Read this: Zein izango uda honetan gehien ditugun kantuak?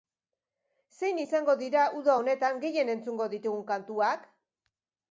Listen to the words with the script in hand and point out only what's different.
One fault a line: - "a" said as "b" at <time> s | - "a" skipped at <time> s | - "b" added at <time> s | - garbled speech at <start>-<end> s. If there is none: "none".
- "dira" added at 1.6 s
- "entzungo" added at 3.0 s